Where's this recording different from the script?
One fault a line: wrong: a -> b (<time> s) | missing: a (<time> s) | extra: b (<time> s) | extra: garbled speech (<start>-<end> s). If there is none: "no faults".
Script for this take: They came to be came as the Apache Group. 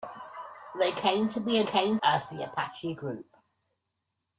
no faults